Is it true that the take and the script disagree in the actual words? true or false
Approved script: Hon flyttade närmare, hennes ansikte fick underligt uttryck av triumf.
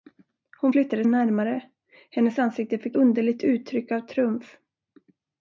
false